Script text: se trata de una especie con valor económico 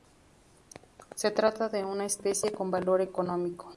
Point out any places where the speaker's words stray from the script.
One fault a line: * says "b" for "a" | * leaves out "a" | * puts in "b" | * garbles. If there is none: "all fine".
all fine